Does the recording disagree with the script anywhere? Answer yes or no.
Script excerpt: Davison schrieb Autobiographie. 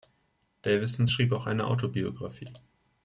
yes